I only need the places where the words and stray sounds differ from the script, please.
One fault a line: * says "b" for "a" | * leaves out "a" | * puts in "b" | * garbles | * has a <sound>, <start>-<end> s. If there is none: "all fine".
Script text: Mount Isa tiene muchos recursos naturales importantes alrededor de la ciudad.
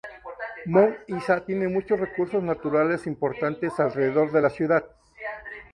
all fine